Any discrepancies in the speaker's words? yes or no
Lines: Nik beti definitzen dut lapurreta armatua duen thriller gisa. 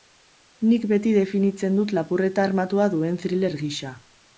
no